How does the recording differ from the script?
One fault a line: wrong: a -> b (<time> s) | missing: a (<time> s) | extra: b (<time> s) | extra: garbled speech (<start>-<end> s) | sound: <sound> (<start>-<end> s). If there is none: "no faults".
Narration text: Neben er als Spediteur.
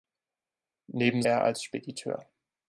no faults